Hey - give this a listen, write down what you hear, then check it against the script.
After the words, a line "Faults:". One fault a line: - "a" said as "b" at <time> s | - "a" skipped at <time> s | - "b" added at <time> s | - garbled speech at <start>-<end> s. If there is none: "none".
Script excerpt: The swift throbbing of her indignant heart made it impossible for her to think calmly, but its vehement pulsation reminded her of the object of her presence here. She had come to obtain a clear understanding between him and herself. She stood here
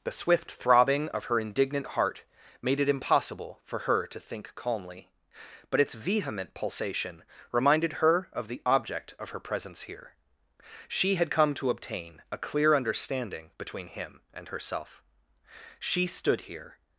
The swift throbbing of her indignant heart made it impossible for her to think calmly, but its vehement pulsation reminded her of the object of her presence here. She had come to obtain a clear understanding between him and herself. She stood here
Faults:
none